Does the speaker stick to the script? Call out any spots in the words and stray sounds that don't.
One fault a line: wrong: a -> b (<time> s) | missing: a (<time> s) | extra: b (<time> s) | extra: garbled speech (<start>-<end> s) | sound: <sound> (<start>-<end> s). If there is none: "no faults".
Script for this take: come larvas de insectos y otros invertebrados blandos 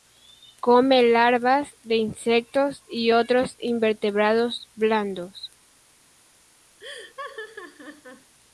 sound: laugh (6.8-8.3 s)